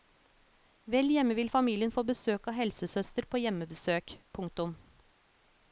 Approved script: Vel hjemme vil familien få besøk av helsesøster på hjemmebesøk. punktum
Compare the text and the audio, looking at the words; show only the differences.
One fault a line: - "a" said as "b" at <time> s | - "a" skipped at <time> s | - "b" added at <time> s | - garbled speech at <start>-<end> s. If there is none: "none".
none